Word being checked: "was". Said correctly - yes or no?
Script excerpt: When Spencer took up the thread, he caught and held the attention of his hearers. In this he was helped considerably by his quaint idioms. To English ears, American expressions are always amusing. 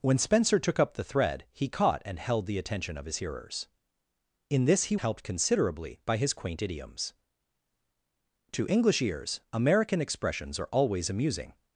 no